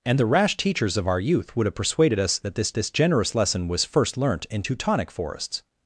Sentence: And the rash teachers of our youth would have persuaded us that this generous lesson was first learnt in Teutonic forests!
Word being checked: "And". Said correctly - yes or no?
yes